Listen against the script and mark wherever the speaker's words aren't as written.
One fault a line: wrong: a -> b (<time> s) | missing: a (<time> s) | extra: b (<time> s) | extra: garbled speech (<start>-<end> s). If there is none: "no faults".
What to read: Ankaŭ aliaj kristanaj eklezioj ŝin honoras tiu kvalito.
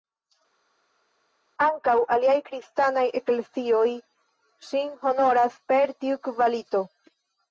extra: per (5.7 s)